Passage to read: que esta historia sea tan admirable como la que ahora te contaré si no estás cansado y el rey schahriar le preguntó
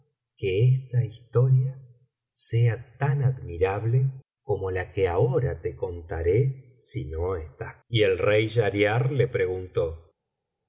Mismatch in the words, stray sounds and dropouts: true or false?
true